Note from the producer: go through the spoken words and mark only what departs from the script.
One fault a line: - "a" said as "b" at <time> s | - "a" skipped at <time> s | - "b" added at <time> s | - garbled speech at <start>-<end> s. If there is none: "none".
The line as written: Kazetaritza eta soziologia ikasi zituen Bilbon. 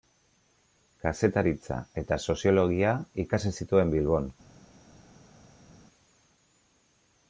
none